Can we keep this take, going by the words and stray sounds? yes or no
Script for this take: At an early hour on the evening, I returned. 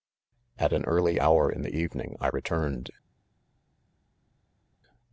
no